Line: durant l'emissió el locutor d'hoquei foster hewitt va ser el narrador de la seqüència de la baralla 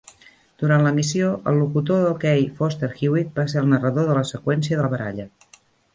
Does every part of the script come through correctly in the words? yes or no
yes